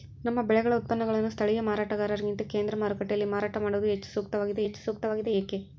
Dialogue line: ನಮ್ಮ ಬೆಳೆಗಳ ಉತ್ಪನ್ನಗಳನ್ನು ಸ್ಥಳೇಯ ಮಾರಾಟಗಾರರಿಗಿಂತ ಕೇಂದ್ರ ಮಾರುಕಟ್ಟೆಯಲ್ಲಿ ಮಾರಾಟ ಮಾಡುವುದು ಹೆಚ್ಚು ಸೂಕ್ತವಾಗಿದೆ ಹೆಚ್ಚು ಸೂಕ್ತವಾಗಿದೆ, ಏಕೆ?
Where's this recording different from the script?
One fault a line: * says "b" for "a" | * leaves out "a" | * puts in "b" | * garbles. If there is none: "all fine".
all fine